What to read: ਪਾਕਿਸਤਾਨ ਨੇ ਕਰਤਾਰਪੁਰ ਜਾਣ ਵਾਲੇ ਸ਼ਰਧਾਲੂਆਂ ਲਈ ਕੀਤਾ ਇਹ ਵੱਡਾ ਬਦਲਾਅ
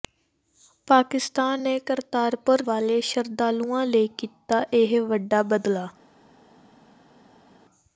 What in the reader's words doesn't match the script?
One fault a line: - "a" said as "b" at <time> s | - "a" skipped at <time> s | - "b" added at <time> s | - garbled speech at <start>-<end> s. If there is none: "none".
- "ਜਾਣ" skipped at 2.6 s